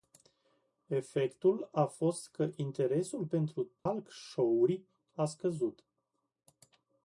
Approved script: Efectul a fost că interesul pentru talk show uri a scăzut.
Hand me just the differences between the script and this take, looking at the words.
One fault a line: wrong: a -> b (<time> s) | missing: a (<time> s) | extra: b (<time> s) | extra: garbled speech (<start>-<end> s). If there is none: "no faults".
no faults